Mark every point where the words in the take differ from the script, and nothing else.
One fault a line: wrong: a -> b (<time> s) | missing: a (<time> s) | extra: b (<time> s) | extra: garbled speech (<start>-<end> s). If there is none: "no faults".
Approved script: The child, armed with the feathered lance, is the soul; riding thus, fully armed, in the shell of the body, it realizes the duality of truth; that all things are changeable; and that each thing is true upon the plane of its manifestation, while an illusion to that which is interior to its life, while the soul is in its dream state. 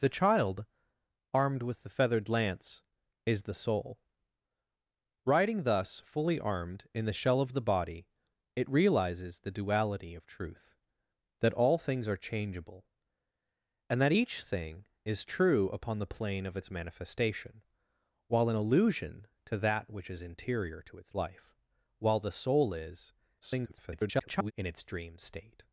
extra: garbled speech (23.4-24.5 s)